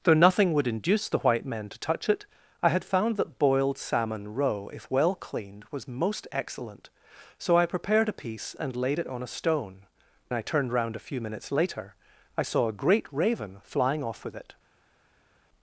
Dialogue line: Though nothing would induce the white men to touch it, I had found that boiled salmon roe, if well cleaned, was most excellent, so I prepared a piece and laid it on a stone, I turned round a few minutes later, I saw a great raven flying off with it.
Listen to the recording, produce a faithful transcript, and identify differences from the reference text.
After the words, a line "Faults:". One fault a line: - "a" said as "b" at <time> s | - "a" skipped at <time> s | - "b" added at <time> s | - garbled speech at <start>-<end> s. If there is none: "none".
Though nothing would induce the white men to touch it, I had found that boiled salmon roe, if well cleaned, was most excellent, so I prepared a piece and laid it on a stone, I turned round a few minutes later, I saw a great raven flying off with it.
Faults:
none